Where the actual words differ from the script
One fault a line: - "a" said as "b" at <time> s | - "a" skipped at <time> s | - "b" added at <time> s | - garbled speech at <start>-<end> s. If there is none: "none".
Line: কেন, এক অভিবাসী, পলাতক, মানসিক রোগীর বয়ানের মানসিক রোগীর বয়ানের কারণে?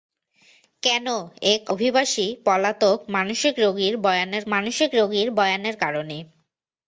none